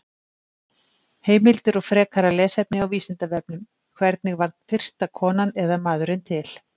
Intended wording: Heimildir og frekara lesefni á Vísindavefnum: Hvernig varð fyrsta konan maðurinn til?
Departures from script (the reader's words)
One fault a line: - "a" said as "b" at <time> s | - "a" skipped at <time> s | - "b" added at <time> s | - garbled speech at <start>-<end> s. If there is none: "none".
- "eða" added at 5.7 s